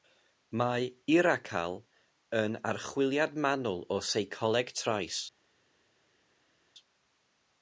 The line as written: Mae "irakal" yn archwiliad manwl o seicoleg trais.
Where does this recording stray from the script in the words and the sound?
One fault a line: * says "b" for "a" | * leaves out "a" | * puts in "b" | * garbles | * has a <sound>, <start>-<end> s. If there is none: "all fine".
all fine